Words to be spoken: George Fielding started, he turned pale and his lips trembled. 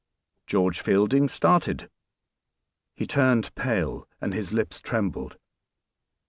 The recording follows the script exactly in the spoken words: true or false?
true